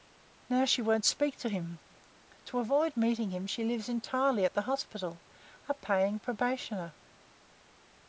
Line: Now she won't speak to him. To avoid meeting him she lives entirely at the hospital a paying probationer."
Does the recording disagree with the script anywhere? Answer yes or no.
no